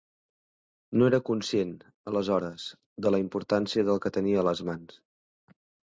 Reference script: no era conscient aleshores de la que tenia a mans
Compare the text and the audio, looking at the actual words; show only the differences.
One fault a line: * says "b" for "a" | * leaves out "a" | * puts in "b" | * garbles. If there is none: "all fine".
* puts in "importància del"
* puts in "les"